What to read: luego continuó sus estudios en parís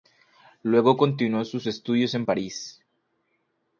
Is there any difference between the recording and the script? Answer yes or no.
no